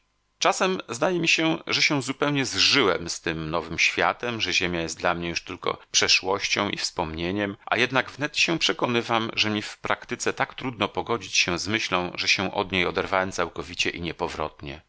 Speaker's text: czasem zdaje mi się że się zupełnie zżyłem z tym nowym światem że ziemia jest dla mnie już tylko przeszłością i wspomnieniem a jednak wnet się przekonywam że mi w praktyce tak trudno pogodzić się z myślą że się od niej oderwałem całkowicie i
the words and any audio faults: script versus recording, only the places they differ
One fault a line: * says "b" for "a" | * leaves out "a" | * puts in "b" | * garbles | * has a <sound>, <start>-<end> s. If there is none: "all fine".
all fine